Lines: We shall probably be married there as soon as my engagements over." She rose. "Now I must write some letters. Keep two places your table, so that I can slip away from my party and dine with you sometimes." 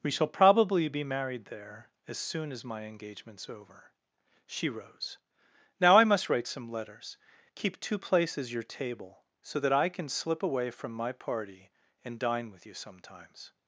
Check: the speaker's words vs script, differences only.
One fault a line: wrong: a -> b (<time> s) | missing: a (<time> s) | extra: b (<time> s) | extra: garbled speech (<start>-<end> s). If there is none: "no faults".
no faults